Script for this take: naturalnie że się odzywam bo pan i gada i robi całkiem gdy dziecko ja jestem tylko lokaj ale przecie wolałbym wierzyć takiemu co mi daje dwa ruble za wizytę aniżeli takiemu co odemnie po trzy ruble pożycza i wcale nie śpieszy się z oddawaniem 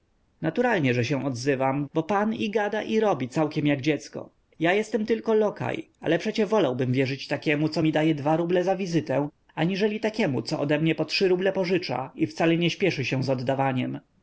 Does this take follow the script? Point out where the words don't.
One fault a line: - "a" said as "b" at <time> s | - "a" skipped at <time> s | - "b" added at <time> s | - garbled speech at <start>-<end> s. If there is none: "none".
- "gdy" said as "jak" at 3.7 s